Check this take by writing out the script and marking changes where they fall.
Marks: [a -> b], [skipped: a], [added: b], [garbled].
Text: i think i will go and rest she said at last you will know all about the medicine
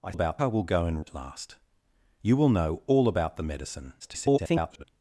i [think -> about] i will go and [skipped: rest she said] at last you will know all about the medicine [garbled]